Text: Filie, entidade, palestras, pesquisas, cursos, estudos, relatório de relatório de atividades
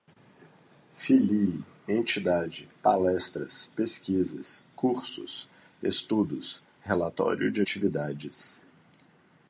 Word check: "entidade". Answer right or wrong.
right